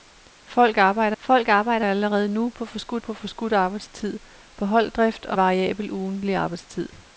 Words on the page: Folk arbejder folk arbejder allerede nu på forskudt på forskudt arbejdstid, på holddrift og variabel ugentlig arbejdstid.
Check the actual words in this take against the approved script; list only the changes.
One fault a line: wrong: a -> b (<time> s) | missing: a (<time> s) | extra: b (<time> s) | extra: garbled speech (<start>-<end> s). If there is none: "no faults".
no faults